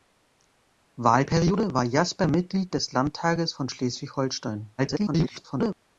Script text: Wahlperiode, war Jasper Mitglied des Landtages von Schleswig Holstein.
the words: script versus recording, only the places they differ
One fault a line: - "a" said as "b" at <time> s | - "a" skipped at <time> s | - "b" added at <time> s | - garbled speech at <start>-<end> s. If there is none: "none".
- garbled speech at 4.8-5.7 s